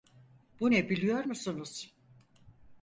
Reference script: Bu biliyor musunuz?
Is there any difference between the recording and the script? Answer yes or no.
yes